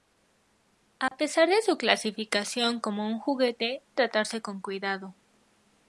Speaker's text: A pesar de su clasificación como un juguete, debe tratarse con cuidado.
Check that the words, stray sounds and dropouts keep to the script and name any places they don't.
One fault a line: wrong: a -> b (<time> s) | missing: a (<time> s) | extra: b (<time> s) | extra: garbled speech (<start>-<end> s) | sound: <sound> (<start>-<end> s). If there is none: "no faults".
sound: dropout (1.1-1.1 s)
missing: debe (3.8 s)